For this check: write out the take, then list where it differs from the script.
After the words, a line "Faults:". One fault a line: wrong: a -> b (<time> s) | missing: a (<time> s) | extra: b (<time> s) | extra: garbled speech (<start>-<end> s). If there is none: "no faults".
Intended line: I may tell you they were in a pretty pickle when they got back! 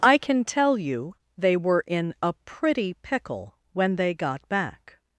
I can tell you they were in a pretty pickle when they got back!
Faults:
wrong: may -> can (0.2 s)